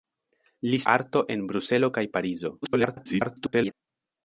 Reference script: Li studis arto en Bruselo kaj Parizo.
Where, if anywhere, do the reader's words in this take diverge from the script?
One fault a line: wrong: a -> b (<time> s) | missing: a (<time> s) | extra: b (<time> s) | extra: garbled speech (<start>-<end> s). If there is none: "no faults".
missing: studis (0.8 s)
extra: garbled speech (2.6-3.7 s)